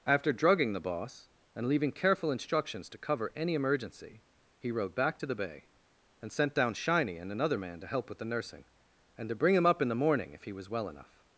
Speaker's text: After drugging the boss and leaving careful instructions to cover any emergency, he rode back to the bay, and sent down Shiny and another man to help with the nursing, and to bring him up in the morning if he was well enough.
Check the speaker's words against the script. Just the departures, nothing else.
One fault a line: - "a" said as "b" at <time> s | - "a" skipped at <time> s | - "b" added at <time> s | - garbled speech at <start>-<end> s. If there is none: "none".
none